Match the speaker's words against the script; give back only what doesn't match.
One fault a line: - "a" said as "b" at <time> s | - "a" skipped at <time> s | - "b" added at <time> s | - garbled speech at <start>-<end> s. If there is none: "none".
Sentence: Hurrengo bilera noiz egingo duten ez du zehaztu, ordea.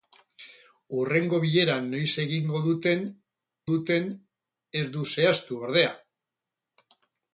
- "duten" added at 3.7 s